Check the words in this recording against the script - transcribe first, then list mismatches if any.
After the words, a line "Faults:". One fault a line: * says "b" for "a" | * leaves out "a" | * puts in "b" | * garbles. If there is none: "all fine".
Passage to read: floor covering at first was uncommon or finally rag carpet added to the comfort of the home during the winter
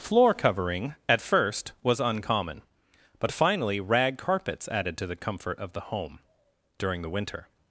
floor covering at first was uncommon but finally rag carpets added to the comfort of the home during the winter
Faults:
* says "but" for "or"
* says "carpets" for "carpet"